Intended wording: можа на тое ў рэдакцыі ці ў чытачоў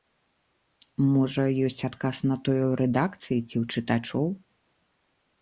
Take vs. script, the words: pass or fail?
fail